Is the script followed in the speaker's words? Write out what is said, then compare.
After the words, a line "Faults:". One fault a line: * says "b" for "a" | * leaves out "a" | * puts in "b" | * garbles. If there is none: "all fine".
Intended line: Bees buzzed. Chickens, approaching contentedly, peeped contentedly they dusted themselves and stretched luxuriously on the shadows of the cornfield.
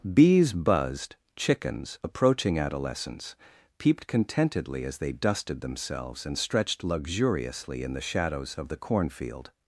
Bees buzzed. Chickens, approaching adolescence, peeped contentedly as they dusted themselves and stretched luxuriously in the shadows of the cornfield.
Faults:
* says "adolescence" for "contentedly"
* puts in "as"
* says "in" for "on"